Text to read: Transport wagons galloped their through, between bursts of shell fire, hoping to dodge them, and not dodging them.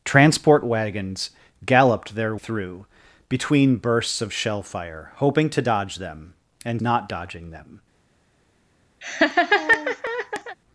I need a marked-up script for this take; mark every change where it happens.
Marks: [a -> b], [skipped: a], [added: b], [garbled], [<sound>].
Transport wagons galloped their through, between bursts of shell fire, hoping to dodge them, and not dodging them. [laugh]